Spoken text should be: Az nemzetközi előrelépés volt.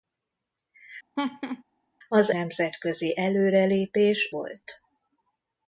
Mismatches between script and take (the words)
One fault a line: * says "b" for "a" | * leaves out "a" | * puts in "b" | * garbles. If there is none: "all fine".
all fine